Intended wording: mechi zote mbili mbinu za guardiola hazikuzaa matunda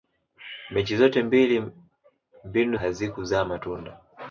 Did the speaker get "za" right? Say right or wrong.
wrong